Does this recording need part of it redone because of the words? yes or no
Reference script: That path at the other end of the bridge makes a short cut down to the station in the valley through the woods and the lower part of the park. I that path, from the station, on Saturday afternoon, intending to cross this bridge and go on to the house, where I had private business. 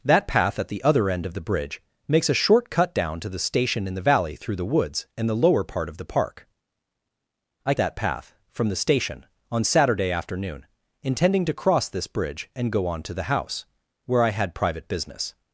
no